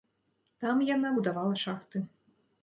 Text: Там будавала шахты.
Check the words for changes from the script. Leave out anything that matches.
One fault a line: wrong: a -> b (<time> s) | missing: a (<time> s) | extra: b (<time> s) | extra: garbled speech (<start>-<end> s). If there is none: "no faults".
extra: яна (0.9 s)